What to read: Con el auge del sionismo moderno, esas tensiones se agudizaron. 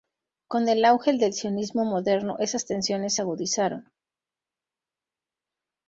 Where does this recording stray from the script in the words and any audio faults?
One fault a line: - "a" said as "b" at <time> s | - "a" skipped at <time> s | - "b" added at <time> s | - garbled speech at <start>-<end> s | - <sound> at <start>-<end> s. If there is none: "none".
none